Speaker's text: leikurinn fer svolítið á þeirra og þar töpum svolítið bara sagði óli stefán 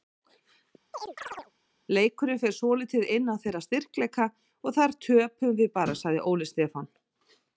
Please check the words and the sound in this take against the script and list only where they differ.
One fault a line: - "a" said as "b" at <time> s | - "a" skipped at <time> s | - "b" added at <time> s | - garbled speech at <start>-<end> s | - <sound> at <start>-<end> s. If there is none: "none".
- chirp at 0.9-1.5 s
- "inn" added at 3.2 s
- "styrkleika" added at 3.7 s
- "svolítið" said as "við" at 5.6 s